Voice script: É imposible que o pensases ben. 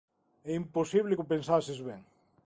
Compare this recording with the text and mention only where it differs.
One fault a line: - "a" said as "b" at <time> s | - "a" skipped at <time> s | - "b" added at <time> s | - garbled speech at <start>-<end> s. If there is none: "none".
none